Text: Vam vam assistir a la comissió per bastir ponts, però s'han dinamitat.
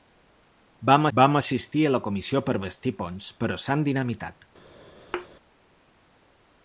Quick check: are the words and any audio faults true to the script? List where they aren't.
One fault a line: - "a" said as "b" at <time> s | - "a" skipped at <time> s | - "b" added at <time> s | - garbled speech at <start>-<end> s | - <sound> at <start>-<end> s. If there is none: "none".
- thud at 5.1-5.3 s